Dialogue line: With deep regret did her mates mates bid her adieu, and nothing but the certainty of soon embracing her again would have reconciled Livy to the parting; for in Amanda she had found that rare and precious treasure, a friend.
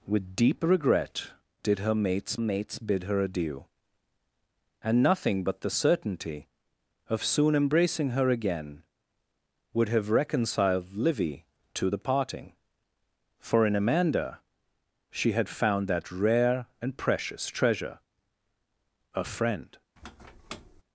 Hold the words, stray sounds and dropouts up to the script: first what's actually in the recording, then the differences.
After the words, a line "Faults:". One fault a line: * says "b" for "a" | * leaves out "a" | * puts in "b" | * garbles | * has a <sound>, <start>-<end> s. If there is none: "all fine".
With deep regret did her mates mates bid her adieu, and nothing but the certainty of soon embracing her again would have reconciled Livy to the parting; for in Amanda she had found that rare and precious treasure, a friend.
Faults:
* has a squeak, 20.0-20.8 s